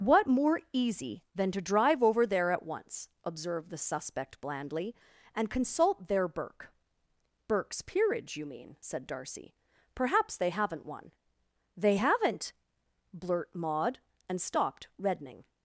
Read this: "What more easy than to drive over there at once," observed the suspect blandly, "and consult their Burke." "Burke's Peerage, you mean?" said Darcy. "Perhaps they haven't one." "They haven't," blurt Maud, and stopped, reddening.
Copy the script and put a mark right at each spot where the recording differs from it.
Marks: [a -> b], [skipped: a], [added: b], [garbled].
"What more easy than to drive over there at once," observed the suspect blandly, "and consult their Burke." "Burke's Peerage, you mean?" said Darcy. "Perhaps they haven't one." "They haven't," blurt Maud, and stopped, reddening.